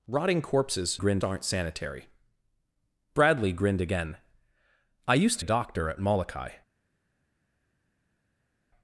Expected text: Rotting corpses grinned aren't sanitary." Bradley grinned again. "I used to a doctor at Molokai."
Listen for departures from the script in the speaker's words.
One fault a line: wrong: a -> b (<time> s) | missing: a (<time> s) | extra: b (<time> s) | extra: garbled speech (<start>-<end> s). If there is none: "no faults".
no faults